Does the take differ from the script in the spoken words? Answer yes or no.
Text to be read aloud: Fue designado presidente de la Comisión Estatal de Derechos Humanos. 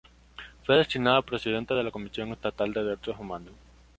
no